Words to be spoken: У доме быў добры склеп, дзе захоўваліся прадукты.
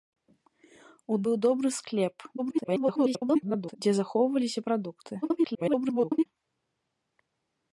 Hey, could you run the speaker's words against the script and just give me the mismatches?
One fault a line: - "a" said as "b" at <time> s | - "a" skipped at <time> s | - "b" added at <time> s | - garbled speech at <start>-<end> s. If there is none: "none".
- "доме" skipped at 1.2 s
- garbled speech at 2.4-3.8 s
- garbled speech at 5.2-6.3 s